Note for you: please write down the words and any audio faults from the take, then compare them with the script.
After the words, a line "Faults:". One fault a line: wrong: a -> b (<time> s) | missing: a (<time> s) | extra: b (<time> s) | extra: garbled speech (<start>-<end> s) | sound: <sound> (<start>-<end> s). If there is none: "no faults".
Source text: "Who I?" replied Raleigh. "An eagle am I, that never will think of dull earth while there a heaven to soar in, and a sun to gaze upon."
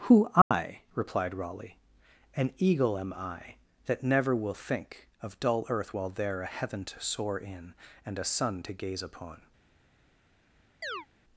"Who I?" replied Raleigh. "An eagle am I, that never will think of dull earth while there a heaven to soar in, and a sun to gaze upon."
Faults:
sound: dropout (0.4-0.5 s)
sound: chirp (10.8-11.1 s)